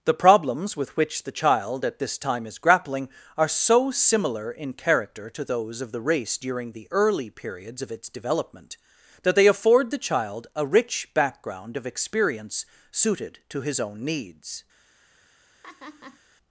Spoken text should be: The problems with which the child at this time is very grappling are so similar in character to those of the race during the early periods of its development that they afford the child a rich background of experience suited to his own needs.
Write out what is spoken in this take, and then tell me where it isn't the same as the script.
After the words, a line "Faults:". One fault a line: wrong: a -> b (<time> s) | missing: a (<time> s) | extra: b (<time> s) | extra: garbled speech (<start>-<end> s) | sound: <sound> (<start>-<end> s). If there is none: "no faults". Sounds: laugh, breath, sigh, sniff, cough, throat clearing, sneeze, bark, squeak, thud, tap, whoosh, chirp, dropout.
The problems with which the child at this time is grappling are so similar in character to those of the race during the early periods of its development that they afford the child a rich background of experience suited to his own needs.
Faults:
missing: very (2.6 s)
sound: laugh (15.6-16.2 s)